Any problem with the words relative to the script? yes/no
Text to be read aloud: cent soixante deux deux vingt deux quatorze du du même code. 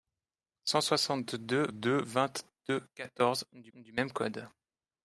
no